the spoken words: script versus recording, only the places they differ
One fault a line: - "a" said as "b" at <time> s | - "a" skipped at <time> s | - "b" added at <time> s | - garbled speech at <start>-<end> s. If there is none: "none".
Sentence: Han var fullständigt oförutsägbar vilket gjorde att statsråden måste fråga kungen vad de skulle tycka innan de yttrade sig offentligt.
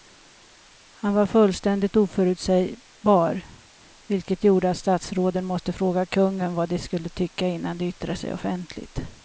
none